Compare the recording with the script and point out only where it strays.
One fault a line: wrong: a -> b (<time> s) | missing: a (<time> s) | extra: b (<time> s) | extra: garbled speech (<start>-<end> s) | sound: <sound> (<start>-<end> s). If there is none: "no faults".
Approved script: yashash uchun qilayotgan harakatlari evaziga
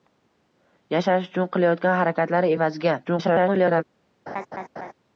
extra: garbled speech (3.0-3.8 s)
sound: laugh (4.3-4.9 s)